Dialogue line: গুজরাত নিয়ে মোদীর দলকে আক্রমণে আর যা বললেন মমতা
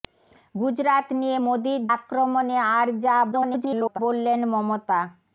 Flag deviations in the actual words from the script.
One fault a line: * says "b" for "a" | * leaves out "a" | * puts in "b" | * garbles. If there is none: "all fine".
* leaves out "দলকে"
* garbles